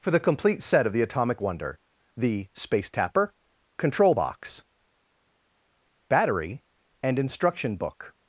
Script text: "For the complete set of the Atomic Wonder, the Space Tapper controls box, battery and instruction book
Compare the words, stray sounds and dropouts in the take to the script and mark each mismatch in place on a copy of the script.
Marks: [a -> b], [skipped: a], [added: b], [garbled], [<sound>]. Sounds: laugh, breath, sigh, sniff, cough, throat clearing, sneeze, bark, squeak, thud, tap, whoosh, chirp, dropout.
"For the complete set of the Atomic Wonder, the Space Tapper [controls -> control] box, battery and instruction book